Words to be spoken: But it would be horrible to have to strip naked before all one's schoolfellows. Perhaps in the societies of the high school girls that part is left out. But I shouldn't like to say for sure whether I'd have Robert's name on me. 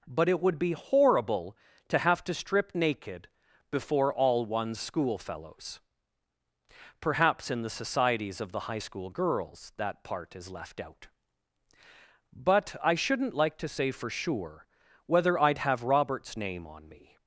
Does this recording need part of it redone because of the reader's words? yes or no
no